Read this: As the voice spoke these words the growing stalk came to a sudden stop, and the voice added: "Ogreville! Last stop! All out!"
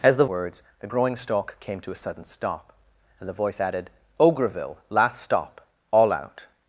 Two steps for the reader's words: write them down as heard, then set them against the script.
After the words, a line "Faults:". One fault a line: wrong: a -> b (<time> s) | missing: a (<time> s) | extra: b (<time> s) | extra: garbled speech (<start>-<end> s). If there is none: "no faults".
As the words the growing stalk came to a sudden stop, and the voice added: "Ogreville! Last stop! All out!"
Faults:
missing: voice spoke these (0.2 s)